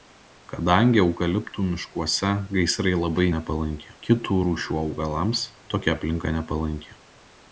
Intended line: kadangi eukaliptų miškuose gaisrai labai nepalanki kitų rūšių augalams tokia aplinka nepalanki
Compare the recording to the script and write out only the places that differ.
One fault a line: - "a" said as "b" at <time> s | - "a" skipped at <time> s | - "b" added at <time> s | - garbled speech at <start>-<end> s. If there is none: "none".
none